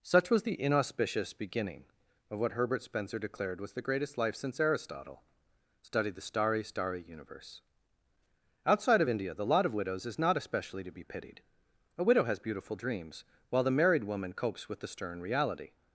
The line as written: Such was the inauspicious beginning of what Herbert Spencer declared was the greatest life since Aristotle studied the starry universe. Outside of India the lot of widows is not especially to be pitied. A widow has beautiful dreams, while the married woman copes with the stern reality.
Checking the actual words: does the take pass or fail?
fail